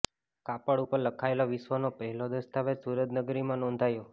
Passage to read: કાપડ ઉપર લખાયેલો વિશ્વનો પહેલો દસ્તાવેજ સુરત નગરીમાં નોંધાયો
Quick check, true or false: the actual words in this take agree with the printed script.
true